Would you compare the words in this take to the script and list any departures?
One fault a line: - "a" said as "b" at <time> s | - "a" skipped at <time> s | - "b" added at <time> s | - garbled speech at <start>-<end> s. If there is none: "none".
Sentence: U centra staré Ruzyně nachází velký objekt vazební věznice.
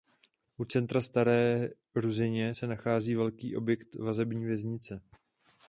- "se" added at 2.5 s